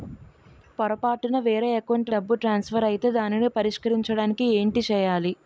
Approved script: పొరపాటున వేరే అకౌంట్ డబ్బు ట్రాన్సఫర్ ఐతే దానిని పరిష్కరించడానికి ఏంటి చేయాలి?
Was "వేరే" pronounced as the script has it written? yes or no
yes